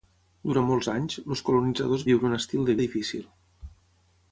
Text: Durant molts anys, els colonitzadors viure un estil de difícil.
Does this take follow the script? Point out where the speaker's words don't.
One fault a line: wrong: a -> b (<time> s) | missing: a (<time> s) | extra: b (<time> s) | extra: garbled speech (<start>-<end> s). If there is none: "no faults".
no faults